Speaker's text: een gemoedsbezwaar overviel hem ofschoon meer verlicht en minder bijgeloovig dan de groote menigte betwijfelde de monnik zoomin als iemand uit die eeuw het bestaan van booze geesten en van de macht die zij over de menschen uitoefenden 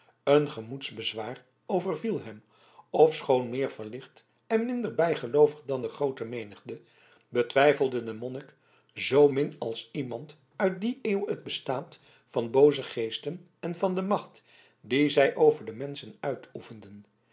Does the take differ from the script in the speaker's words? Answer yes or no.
no